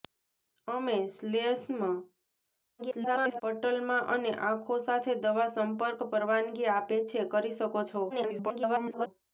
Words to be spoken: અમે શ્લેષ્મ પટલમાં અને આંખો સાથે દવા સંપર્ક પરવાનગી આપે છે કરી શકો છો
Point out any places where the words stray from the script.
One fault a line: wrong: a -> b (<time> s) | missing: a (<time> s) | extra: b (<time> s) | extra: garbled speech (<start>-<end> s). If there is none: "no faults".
extra: garbled speech (2.8-3.4 s)
extra: garbled speech (8.1-9.1 s)